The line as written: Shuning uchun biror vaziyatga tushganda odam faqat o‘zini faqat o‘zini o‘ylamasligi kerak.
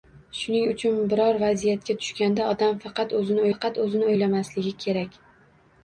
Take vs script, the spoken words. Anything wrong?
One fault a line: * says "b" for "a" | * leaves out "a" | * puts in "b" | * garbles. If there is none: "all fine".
all fine